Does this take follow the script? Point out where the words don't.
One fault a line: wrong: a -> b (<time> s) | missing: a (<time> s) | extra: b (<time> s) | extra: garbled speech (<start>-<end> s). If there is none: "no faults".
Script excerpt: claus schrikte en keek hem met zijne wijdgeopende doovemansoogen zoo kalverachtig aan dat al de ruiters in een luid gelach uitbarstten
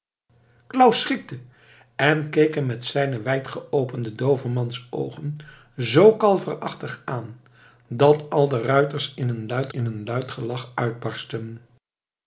extra: in een luid (9.7 s)